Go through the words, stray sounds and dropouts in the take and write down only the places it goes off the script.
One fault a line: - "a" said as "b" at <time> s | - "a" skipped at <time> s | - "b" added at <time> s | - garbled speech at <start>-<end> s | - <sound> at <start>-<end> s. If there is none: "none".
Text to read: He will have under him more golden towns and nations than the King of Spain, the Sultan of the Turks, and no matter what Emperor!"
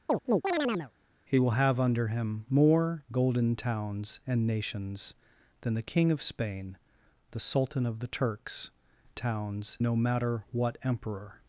- chirp at 0.1-0.9 s
- "and" said as "towns" at 9.1 s